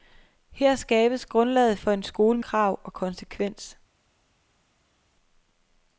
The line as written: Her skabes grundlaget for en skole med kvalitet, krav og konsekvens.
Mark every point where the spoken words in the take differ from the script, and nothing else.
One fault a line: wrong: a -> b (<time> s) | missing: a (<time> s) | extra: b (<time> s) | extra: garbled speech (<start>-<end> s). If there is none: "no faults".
missing: med kvalitet (2.4 s)